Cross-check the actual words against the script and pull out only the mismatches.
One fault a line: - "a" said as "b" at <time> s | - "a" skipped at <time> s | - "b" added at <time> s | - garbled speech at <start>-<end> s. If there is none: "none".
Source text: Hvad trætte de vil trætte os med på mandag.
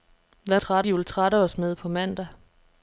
none